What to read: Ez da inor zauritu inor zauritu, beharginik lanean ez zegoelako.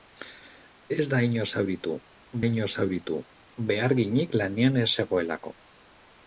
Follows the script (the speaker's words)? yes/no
yes